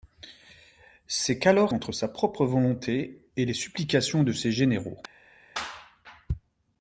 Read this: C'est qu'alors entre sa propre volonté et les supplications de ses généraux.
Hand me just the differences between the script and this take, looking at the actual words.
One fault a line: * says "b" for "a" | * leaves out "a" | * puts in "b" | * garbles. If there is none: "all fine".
all fine